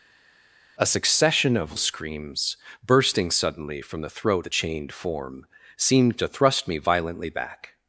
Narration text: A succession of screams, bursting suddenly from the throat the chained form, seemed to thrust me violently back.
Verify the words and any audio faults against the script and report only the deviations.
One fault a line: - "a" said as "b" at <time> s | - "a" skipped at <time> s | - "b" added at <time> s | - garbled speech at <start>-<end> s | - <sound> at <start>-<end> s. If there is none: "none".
none